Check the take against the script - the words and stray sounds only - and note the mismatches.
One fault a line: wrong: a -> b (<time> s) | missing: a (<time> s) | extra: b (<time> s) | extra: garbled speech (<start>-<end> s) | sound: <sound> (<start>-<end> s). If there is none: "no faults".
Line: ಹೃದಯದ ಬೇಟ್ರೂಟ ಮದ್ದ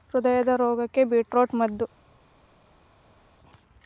extra: ರೋಗಕ್ಕ (0.6 s)